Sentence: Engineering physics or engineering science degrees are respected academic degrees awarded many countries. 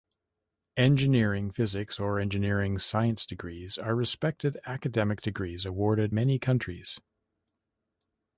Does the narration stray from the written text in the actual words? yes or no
no